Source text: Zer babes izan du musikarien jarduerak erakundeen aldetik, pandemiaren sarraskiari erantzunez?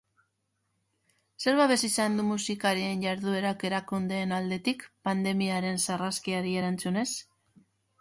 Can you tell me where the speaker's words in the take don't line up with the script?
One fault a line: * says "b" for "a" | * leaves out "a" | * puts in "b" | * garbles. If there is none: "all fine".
all fine